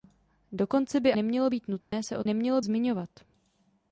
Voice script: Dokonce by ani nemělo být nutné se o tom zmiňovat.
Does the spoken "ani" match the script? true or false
false